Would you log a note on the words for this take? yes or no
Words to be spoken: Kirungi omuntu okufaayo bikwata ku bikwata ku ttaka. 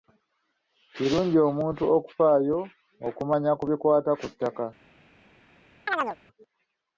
yes